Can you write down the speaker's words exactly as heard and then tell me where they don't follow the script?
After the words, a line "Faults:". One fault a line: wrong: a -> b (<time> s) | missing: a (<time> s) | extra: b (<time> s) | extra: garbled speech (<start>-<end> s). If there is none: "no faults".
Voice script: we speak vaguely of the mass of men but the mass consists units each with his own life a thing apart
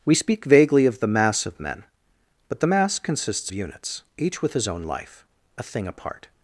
we speak vaguely of the mass of men but the mass consists units each with his own life a thing apart
Faults:
no faults